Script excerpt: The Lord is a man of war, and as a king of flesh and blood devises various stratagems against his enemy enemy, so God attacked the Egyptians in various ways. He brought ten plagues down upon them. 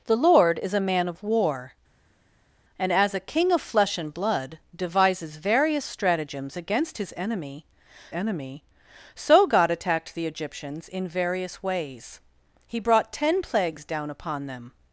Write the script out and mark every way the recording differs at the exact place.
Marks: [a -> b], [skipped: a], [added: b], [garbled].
The Lord is a man of war, and as a king of flesh and blood devises various stratagems against his enemy enemy, so God attacked the Egyptians in various ways. He brought ten plagues down upon them.